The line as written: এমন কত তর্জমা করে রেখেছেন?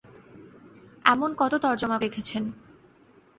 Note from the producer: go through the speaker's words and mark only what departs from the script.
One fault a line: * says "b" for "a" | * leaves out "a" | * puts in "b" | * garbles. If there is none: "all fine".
* leaves out "করে"